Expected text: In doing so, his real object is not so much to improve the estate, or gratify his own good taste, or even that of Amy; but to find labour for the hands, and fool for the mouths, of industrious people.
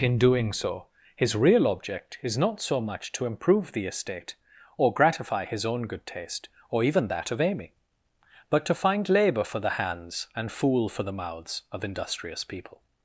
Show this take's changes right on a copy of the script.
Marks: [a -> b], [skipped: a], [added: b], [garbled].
In doing so, his real object is not so much to improve the estate, or gratify his own good taste, or even that of Amy; but to find labour for the hands, and fool for the mouths, of industrious people.